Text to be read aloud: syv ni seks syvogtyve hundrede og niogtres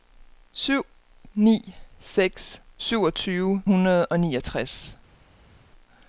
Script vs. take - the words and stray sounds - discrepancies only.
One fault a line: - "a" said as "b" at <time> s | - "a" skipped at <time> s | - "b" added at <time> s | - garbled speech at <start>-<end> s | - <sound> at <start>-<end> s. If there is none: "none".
none